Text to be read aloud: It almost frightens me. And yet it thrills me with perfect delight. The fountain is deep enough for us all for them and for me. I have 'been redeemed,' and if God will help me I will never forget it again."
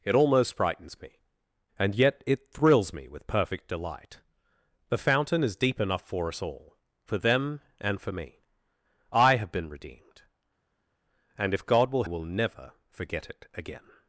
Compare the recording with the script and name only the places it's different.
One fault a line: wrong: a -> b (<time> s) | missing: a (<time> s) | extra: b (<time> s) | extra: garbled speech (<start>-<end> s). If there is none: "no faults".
missing: help me I (12.0 s)